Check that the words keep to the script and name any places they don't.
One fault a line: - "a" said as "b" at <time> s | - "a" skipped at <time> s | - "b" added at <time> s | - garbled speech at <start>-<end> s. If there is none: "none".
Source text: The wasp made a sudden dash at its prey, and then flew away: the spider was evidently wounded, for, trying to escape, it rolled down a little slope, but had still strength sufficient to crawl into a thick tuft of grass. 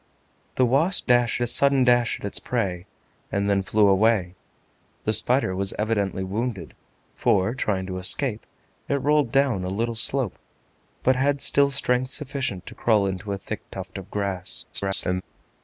- "made" said as "dash" at 1.0 s
- garbled speech at 14.7-15.2 s